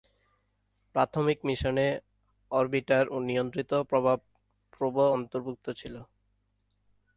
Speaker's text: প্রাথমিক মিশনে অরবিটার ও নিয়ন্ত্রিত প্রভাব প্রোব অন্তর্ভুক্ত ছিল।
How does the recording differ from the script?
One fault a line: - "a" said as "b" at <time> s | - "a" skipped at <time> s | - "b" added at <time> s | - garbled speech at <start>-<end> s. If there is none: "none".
none